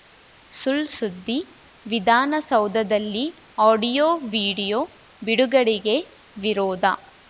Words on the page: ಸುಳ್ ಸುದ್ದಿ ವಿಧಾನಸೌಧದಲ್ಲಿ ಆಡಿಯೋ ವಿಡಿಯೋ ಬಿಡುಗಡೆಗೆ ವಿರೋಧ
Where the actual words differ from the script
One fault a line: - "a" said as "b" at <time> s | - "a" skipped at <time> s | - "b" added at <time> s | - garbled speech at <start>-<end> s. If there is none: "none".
none